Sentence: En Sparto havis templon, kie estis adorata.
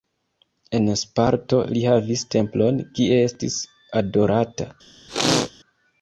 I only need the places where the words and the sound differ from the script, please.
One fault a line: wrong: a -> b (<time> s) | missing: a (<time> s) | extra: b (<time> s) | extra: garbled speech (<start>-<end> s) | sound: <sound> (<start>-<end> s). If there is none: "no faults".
extra: li (1.8 s)
sound: sneeze (5.1-5.5 s)